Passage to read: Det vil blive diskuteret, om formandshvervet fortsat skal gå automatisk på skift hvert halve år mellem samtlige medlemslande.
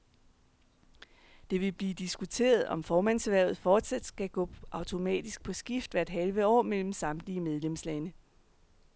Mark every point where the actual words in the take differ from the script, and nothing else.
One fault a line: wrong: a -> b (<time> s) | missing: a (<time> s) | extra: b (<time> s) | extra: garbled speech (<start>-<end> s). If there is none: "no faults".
no faults